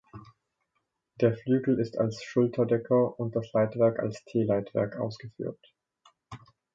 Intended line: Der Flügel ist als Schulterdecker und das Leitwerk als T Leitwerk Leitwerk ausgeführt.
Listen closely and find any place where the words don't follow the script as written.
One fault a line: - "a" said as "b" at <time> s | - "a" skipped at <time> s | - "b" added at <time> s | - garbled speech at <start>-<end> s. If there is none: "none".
- "Leitwerk" skipped at 5.0 s